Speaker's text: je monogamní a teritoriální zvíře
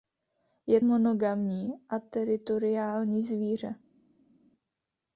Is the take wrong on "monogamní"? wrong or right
right